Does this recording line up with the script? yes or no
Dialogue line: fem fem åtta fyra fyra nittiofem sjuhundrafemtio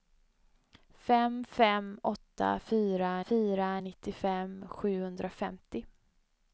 yes